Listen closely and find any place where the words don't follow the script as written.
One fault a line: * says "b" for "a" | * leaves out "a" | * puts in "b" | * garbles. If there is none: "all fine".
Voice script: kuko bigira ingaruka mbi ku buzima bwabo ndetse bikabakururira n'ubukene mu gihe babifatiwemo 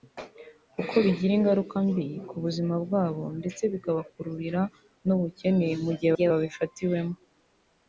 * puts in "gihe"